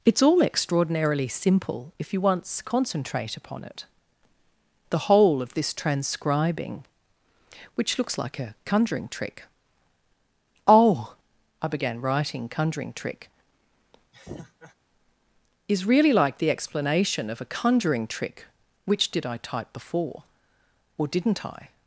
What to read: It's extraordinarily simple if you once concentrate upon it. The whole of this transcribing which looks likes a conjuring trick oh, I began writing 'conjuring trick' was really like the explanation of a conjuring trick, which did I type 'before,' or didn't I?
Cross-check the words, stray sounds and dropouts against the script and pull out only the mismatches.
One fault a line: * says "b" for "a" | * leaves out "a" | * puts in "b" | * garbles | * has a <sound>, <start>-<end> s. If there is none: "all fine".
* puts in "all"
* says "like" for "likes"
* has a laugh, 14.1-14.7 s
* says "is" for "was"